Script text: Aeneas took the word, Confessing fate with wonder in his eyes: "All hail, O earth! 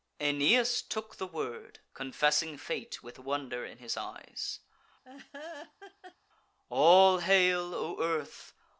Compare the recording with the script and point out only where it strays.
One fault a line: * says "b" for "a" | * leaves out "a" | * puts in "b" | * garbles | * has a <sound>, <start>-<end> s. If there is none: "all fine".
* has a laugh, 5.0-6.2 s